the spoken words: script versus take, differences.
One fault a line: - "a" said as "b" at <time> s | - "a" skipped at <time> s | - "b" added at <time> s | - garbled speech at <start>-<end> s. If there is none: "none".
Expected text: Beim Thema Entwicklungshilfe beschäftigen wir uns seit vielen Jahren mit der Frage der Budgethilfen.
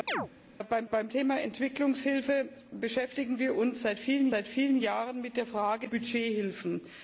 - "beim" added at 0.9 s
- "seit vielen" added at 4.3 s
- "der" skipped at 5.9 s